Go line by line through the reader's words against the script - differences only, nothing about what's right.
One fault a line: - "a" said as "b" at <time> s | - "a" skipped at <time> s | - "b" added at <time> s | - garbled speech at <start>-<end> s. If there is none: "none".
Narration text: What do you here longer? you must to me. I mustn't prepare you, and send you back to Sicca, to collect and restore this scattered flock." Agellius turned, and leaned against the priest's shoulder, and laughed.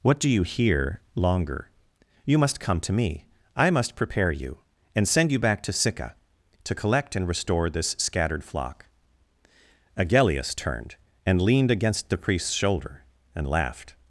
- "come" added at 2.6 s
- "mustn't" said as "must" at 3.7 s